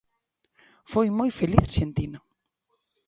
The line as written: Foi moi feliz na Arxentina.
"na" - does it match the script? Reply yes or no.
no